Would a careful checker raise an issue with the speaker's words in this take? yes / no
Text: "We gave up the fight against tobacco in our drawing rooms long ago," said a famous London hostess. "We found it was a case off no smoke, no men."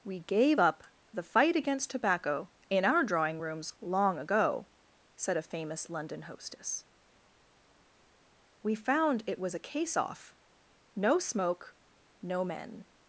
no